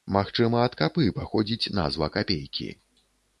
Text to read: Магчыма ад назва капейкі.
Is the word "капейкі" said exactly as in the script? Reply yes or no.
yes